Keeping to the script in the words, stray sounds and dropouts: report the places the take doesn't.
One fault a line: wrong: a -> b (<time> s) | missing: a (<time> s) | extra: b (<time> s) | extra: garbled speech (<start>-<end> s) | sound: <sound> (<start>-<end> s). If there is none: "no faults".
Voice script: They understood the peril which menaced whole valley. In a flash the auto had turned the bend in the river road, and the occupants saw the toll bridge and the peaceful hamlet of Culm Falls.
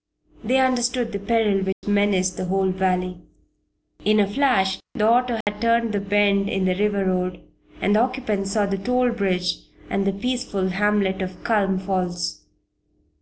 sound: dropout (1.7-1.8 s)
extra: the (2.4 s)
sound: dropout (5.4-5.5 s)